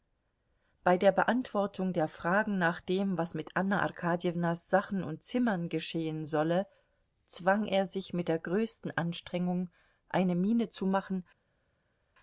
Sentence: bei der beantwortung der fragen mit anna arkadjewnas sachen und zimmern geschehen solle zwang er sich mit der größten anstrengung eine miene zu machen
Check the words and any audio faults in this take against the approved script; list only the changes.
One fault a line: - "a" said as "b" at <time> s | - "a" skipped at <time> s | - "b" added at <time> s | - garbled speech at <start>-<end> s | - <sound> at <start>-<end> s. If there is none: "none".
- "nach dem was" added at 2.6 s